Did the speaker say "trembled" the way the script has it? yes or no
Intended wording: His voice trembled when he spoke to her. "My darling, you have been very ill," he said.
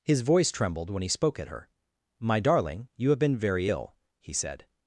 yes